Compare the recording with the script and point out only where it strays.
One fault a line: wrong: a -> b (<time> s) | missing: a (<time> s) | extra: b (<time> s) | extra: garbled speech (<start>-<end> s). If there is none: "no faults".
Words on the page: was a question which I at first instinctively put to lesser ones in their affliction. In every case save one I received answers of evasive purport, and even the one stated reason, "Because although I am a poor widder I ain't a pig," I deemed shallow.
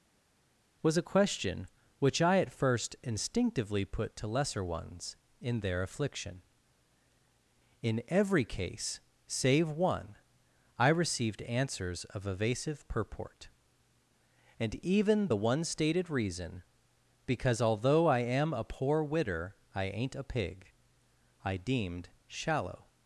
no faults